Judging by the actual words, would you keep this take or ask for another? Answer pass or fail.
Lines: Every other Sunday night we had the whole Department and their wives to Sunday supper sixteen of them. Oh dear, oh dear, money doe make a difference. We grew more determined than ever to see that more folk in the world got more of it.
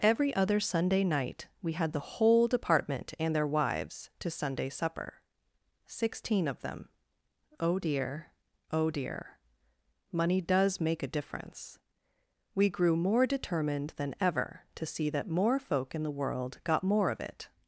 fail